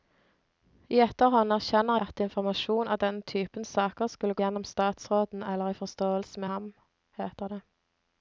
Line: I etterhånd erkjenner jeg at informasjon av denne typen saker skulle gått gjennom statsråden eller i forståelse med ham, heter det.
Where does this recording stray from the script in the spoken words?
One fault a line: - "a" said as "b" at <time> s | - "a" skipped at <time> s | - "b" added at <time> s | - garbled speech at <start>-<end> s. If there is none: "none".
- "jeg" skipped at 2.0 s
- "gått" skipped at 4.4 s
- "med" skipped at 6.4 s